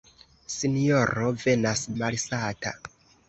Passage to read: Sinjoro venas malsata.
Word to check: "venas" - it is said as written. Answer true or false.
true